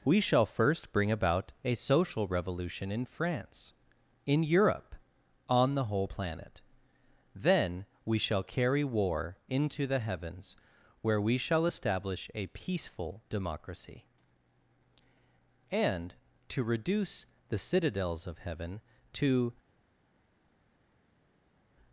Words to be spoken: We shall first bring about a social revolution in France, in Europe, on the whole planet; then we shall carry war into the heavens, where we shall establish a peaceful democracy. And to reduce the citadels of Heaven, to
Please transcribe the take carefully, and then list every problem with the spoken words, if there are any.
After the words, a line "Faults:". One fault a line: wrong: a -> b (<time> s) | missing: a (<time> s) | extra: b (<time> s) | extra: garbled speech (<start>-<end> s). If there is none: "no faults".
We shall first bring about a social revolution in France, in Europe, on the whole planet; then we shall carry war into the heavens, where we shall establish a peaceful democracy. And to reduce the citadels of Heaven, to
Faults:
no faults